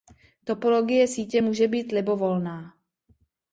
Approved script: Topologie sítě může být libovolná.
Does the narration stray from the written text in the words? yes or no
no